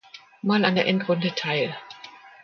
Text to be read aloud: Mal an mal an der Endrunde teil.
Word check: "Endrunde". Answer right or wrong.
right